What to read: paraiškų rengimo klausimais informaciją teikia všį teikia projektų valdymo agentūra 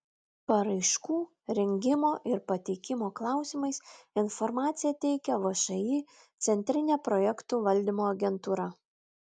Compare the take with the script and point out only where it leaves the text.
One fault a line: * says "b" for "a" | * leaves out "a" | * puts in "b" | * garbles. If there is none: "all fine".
* puts in "ir pateikimo"
* says "centrinė" for "teikia"